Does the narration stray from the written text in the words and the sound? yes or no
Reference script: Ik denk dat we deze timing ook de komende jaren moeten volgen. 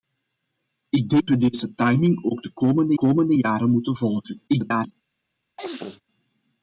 yes